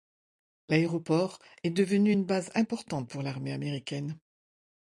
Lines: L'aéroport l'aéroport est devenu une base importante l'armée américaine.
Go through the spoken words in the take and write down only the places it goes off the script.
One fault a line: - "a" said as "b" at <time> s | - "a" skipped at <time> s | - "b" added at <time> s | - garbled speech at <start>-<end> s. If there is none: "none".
- "l'aéroport" skipped at 1.4 s
- "pour" added at 3.1 s